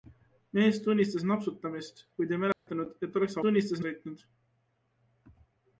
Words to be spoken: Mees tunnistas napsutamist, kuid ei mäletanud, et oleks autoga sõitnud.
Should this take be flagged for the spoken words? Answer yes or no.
yes